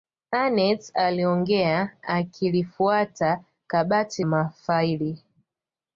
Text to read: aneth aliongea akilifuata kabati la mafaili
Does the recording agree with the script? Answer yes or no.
no